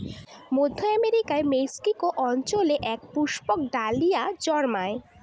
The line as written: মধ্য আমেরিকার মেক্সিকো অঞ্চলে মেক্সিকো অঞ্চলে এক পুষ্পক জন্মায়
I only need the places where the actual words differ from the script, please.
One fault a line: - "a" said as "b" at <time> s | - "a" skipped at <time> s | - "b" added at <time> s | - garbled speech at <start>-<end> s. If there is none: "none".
- "মেক্সিকো অঞ্চলে" skipped at 2.8 s
- "ডালিয়া" added at 3.7 s